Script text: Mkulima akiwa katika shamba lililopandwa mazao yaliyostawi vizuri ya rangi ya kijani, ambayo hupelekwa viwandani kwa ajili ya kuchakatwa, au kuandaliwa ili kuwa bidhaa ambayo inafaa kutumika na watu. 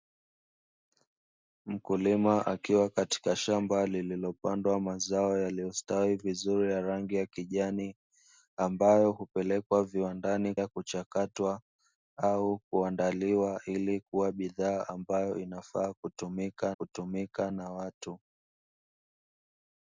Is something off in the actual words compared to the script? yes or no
yes